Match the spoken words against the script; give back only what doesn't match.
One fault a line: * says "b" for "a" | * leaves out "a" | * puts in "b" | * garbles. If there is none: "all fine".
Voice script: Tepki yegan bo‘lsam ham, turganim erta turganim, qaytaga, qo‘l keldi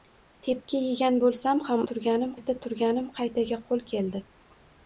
all fine